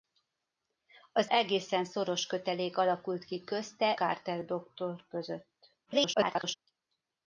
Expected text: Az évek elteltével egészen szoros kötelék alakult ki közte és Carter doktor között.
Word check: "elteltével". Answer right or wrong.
wrong